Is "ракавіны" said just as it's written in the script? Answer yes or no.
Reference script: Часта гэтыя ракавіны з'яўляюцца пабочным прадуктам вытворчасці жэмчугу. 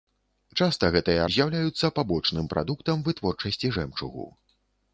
no